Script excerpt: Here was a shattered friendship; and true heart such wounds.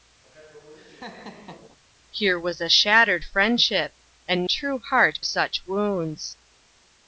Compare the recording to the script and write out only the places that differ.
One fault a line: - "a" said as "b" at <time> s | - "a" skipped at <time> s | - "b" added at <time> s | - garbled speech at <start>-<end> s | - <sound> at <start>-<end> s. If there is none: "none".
- laugh at 0.2-1.8 s